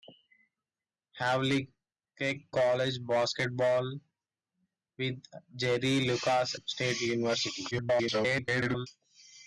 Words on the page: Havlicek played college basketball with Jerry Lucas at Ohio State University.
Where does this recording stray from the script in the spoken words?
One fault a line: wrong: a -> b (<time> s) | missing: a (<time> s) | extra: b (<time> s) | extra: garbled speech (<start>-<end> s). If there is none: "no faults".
missing: played (2.4 s)
missing: at Ohio (6.6 s)
extra: garbled speech (7.7-8.9 s)